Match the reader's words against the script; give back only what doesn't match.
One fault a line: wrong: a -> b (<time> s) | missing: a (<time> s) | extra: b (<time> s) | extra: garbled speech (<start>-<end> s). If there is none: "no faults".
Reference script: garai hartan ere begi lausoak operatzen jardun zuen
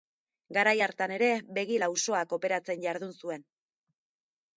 no faults